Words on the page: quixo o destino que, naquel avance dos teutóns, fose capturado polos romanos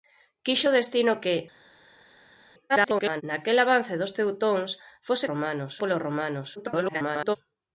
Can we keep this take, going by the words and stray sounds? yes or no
no